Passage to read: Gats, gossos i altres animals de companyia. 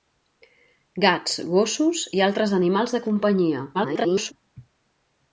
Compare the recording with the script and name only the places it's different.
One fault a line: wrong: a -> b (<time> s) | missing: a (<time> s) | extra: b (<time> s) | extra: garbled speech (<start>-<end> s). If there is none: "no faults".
extra: garbled speech (3.7-4.3 s)